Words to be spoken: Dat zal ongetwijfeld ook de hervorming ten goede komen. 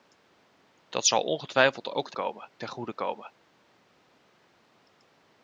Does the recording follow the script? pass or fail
fail